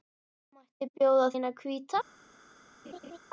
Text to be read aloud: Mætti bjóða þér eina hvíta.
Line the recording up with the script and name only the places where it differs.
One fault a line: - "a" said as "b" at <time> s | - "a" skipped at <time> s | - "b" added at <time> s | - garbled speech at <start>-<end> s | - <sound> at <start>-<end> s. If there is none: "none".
- "þér" skipped at 1.3 s
- laugh at 2.8-3.2 s